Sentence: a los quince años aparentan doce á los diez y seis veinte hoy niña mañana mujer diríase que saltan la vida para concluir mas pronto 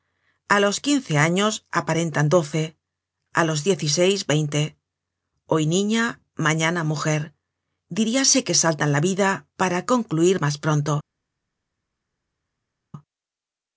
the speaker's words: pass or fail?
pass